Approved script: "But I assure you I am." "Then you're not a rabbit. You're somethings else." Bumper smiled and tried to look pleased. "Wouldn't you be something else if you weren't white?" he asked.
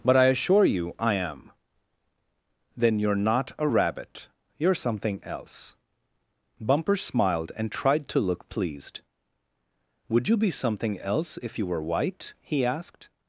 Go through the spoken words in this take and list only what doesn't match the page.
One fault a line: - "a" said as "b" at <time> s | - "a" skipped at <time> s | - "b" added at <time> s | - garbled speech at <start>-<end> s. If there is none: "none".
- "somethings" said as "something" at 4.7 s
- "Wouldn't" said as "Would" at 10.1 s
- "weren't" said as "were" at 11.7 s